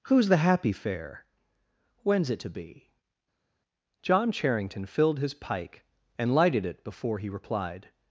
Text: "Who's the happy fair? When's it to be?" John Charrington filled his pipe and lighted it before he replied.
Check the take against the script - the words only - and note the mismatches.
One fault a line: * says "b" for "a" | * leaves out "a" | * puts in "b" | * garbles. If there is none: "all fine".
* says "pike" for "pipe"